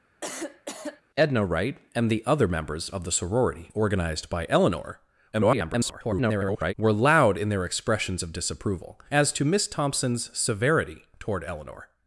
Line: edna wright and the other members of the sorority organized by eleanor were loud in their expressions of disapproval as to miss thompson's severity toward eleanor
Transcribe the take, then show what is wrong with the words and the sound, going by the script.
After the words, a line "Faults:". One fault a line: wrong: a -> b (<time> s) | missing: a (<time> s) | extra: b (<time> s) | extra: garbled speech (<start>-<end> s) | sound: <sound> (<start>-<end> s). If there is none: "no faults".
edna wright and the other members of the sorority organized by eleanor [garbled] were loud in their expressions of disapproval as to miss thompson's severity toward eleanor
Faults:
sound: cough (0.2-1.0 s)
extra: garbled speech (5.3-6.7 s)